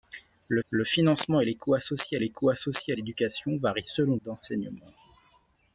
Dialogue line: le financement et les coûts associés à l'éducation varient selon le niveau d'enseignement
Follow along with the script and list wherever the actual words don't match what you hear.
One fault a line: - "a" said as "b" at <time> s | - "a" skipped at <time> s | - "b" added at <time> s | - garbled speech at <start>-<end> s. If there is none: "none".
- "le" added at 0.7 s
- "les coûts associés" added at 2.2 s
- "le niveau" skipped at 4.2 s